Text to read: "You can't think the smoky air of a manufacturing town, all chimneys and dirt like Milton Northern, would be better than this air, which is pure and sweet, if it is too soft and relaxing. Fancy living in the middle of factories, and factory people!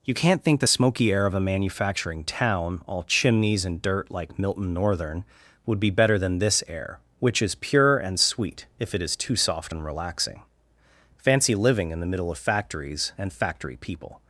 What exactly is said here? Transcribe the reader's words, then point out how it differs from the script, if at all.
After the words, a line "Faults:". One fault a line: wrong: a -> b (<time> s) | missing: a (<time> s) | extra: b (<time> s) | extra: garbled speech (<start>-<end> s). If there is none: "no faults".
"You can't think the smoky air of a manufacturing town, all chimneys and dirt like Milton Northern, would be better than this air, which is pure and sweet, if it is too soft and relaxing. Fancy living in the middle of factories, and factory people!
Faults:
no faults